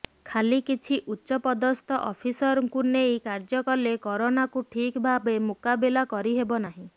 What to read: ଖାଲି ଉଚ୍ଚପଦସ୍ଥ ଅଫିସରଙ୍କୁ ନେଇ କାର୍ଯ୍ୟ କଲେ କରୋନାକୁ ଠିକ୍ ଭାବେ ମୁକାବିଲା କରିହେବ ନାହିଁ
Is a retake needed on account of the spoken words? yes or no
yes